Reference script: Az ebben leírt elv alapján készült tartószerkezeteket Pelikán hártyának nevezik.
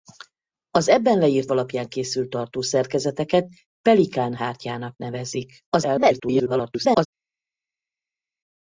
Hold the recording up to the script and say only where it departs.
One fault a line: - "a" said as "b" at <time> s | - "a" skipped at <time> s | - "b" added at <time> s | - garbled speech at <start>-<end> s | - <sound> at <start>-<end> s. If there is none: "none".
- "elv" skipped at 1.5 s
- garbled speech at 5.7-7.1 s